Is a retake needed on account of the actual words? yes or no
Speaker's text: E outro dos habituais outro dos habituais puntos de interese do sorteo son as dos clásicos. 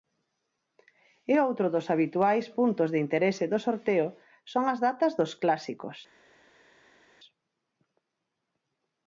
yes